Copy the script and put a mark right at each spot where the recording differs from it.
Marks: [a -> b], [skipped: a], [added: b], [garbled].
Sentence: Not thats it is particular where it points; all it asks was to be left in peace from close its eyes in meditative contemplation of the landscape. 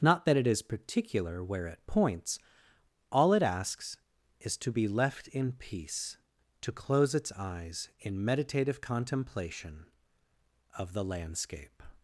Not [thats -> that] it is particular where it points; all it asks [was -> is] to be left in peace [from -> to] close its eyes in meditative contemplation of the landscape.